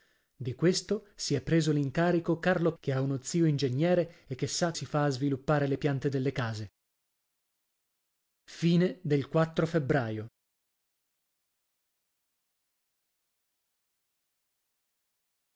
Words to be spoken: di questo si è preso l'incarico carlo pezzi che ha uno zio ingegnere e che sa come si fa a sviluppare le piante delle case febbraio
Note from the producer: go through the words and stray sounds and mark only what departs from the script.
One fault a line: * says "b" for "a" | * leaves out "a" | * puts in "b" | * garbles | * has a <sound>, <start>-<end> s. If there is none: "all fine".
* leaves out "pezzi"
* leaves out "come"